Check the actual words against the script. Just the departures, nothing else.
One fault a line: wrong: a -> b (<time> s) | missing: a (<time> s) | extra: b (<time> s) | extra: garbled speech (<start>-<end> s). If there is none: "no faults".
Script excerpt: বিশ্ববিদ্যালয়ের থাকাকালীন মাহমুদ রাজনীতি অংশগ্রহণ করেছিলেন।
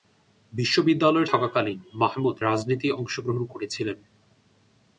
no faults